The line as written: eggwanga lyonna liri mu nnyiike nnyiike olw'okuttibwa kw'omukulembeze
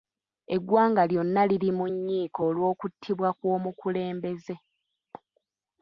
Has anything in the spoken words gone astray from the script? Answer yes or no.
yes